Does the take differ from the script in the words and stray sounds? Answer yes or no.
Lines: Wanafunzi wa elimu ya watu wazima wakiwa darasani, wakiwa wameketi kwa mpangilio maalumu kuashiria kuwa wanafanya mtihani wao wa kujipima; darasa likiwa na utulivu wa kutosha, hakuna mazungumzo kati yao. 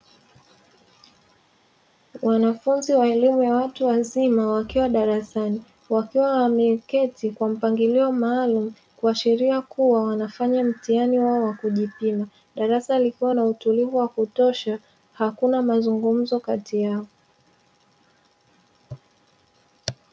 no